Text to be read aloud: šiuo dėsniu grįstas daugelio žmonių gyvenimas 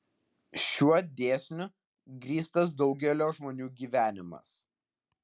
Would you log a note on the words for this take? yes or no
no